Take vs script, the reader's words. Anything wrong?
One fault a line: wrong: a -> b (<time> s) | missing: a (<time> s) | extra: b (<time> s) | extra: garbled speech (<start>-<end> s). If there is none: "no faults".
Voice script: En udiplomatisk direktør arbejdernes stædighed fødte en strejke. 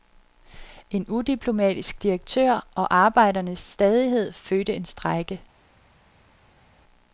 extra: og (2.8 s)